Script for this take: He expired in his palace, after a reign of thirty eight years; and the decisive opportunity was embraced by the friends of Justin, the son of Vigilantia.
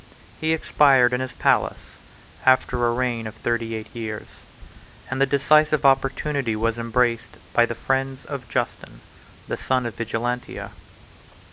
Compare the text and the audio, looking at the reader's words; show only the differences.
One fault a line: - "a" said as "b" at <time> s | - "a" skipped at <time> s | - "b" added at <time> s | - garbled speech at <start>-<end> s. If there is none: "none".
none